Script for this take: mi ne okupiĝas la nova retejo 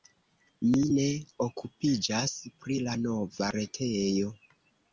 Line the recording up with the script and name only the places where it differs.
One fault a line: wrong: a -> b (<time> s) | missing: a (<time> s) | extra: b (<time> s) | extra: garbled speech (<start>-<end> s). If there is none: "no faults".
extra: pri (2.6 s)